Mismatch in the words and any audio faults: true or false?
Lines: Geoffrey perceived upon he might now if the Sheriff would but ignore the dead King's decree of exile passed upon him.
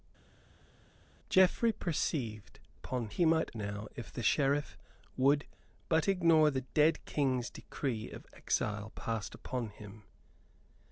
false